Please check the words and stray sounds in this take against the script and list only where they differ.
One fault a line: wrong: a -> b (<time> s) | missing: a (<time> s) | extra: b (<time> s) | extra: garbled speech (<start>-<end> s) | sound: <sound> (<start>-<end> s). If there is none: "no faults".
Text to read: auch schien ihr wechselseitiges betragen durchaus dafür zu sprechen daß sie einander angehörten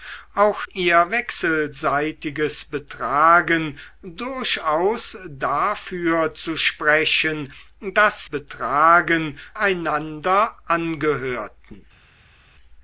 missing: schien (0.6 s)
wrong: sie -> betragen (8.2 s)